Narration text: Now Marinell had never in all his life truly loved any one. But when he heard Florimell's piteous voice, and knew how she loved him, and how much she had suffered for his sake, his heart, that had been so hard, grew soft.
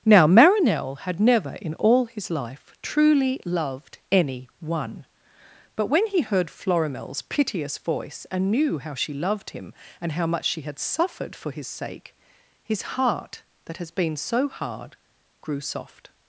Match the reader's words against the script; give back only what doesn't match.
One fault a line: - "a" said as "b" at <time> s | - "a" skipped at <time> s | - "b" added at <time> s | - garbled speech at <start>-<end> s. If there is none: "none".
- "had" said as "has" at 13.8 s